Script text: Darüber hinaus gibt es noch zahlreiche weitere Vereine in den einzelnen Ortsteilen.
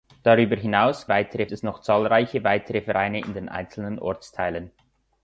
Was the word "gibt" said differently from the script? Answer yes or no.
yes